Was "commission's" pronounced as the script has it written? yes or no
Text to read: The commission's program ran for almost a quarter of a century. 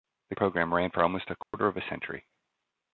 no